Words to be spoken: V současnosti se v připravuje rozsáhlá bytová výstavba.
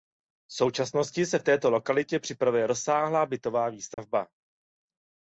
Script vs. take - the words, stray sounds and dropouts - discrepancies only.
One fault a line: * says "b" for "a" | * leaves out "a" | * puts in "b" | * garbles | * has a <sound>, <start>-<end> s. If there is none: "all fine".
* puts in "této lokalitě"
* has a dropout, 3.9-4.0 s